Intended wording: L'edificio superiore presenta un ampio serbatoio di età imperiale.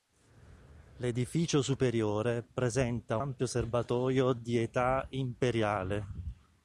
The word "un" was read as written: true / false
false